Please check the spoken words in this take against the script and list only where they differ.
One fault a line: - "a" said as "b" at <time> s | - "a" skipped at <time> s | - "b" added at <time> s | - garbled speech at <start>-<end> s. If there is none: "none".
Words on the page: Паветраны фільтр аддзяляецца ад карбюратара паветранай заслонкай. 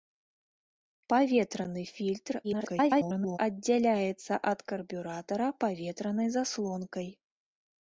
- garbled speech at 2.4-3.4 s